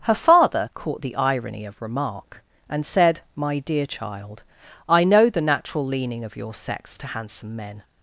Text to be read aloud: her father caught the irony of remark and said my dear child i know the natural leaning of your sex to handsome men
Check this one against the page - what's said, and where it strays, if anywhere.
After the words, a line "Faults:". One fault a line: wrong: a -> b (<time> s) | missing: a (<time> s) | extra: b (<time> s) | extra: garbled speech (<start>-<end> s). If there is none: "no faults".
her father caught the irony of remark and said my dear child i know the natural leaning of your sex to handsome men
Faults:
no faults